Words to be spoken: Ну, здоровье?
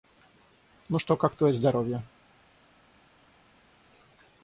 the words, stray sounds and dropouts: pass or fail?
fail